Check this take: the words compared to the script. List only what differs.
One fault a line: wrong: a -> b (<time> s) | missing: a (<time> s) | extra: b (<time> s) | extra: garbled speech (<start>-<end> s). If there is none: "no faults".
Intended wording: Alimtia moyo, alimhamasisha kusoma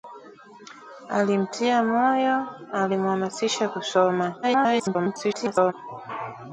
extra: garbled speech (4.4-5.7 s)